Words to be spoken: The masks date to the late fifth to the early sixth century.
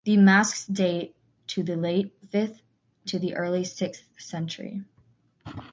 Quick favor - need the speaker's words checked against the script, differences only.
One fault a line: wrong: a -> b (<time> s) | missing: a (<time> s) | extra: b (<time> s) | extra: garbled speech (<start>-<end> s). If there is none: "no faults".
no faults